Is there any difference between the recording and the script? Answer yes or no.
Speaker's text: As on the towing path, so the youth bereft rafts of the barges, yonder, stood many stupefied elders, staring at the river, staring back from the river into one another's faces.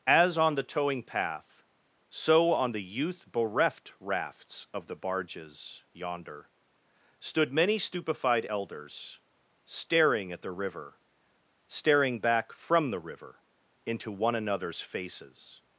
yes